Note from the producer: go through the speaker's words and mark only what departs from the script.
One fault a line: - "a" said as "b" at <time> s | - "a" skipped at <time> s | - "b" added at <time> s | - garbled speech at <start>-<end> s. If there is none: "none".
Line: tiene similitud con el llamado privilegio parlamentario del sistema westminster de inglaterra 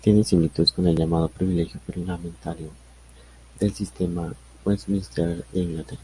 none